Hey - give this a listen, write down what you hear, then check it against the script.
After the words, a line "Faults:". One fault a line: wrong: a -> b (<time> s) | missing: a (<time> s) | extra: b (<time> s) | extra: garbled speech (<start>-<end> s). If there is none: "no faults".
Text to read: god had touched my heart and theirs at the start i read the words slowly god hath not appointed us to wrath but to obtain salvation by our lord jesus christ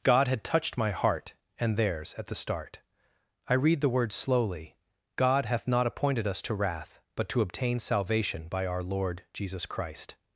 god had touched my heart and theirs at the start i read the words slowly god hath not appointed us to wrath but to obtain salvation by our lord jesus christ
Faults:
no faults